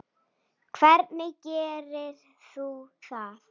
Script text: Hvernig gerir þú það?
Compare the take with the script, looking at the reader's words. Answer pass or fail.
pass